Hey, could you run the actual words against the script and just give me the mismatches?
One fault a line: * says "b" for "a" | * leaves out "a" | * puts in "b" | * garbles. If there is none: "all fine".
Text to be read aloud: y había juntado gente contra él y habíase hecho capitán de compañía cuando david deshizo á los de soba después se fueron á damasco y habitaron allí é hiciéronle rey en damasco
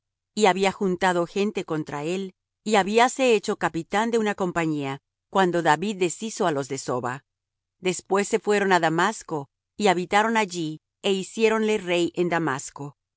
* puts in "una"